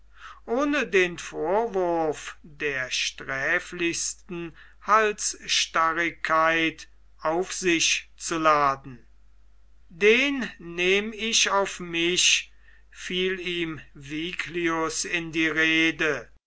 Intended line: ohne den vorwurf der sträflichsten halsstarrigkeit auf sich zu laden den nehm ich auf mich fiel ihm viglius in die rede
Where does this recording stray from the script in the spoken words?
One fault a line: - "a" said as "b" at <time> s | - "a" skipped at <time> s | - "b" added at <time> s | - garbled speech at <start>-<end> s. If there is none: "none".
none